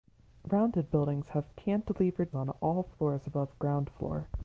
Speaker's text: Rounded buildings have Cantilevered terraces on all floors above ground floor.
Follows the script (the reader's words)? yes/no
no